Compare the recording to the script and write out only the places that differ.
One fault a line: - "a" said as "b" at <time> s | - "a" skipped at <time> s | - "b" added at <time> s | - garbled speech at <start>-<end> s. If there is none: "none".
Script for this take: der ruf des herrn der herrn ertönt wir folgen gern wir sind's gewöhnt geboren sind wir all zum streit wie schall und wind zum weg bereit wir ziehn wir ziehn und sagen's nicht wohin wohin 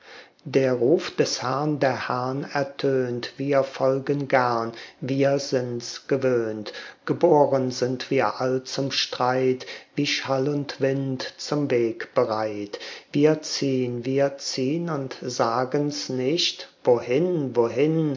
none